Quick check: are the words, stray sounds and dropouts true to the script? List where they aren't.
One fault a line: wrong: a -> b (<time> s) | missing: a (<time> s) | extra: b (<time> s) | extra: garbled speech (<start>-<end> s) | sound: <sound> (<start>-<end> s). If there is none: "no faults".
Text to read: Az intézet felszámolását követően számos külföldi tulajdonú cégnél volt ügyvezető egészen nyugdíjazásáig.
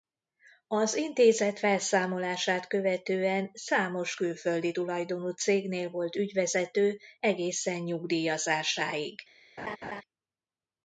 sound: laugh (9.6-10.0 s)